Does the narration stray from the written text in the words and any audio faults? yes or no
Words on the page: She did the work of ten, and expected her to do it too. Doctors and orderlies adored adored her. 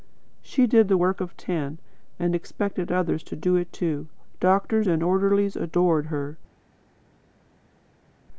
yes